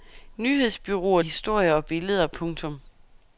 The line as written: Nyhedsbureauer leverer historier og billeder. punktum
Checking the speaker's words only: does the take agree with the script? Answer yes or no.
no